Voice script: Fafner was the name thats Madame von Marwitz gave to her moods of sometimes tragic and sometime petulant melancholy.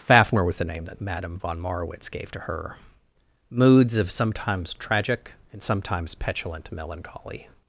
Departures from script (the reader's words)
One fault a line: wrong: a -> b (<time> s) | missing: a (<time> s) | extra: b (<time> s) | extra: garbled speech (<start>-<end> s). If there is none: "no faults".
wrong: thats -> that (0.8 s)
wrong: sometime -> sometimes (5.6 s)